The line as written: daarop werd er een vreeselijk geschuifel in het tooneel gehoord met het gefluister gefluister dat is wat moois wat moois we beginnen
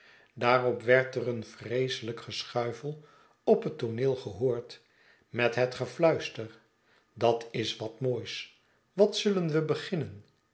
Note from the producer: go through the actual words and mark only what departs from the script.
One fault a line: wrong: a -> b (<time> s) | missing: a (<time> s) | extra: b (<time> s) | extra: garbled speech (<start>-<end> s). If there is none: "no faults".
wrong: in -> op (3.4 s)
missing: gefluister (6.6 s)
wrong: moois -> zullen (9.2 s)